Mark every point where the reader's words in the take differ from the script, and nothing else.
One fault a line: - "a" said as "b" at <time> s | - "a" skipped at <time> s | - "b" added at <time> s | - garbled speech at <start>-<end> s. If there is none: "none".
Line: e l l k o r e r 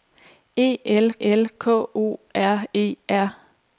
none